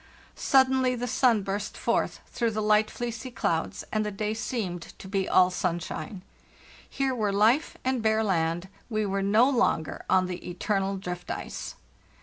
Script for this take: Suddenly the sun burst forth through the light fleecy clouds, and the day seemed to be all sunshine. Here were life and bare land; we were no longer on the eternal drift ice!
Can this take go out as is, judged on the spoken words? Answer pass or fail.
pass